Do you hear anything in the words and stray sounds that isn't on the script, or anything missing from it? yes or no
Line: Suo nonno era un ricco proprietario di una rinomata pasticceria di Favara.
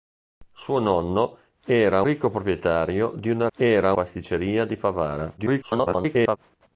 yes